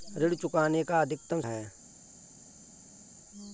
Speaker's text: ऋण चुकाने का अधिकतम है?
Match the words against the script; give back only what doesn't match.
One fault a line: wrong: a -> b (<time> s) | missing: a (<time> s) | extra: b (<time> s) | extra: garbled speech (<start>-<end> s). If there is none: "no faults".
no faults